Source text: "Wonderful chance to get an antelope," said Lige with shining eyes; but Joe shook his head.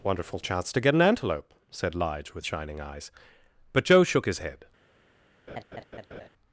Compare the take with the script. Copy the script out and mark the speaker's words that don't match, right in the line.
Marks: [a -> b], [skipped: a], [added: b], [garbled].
"Wonderful chance to get an antelope," said Lige with shining eyes; but Joe shook his head.